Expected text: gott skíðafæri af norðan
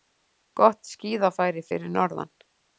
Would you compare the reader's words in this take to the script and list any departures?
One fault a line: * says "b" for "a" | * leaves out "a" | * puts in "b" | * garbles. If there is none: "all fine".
* says "fyrir" for "af"